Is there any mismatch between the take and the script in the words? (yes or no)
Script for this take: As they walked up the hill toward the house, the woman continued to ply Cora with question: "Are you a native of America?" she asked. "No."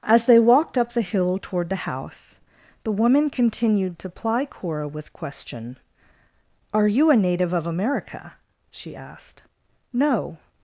no